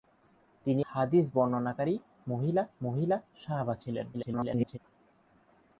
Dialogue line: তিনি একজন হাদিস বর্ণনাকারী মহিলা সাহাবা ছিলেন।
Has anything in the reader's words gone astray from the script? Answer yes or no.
yes